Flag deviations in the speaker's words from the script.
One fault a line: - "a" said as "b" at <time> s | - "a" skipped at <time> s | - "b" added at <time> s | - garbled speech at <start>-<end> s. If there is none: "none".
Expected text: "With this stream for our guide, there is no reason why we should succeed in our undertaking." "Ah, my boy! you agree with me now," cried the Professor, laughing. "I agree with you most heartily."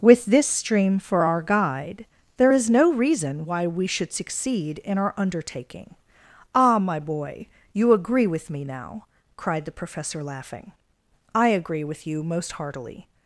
none